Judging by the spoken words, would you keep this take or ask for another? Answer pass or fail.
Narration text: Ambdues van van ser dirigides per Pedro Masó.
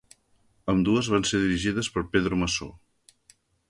fail